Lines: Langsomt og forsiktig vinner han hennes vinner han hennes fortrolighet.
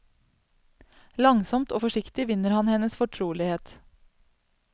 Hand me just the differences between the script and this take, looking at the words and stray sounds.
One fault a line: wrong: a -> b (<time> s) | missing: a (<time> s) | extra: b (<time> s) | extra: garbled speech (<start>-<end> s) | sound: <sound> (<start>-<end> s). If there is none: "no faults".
missing: vinner han hennes (3.0 s)